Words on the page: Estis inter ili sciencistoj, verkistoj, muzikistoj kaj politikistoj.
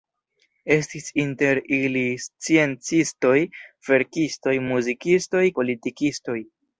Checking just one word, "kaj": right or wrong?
wrong